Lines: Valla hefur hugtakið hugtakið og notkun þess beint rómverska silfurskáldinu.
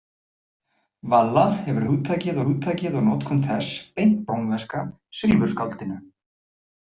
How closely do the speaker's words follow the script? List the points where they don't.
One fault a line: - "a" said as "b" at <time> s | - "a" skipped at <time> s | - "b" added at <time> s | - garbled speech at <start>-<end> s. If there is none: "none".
none